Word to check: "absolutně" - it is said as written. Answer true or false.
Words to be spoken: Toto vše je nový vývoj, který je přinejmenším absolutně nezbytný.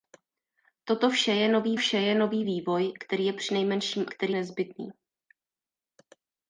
false